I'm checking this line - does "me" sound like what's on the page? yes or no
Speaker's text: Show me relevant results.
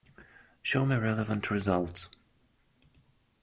yes